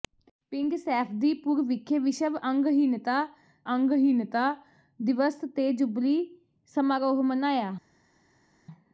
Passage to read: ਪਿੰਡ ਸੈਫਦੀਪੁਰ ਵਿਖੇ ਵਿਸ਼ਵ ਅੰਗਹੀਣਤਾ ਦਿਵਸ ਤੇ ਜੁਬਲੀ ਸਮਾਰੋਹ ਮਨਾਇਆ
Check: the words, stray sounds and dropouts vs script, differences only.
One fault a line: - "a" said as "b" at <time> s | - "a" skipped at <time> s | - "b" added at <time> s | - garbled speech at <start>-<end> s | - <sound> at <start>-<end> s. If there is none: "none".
- "ਅੰਗਹੀਣਤਾ" added at 3.7 s